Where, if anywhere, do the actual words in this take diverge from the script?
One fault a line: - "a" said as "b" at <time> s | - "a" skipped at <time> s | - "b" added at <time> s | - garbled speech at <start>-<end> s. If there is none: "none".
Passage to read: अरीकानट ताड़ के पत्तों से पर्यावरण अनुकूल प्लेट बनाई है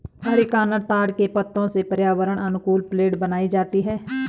- "जाती" added at 3.5 s